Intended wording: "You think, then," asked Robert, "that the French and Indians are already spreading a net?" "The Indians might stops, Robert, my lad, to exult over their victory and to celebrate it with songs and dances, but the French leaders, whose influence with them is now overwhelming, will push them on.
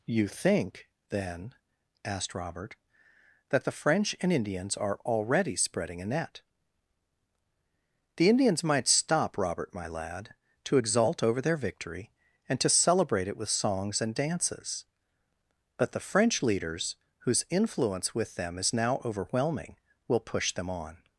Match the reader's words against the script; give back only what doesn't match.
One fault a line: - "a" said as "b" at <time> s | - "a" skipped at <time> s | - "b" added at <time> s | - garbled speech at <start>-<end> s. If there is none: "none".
- "stops" said as "stop" at 8.9 s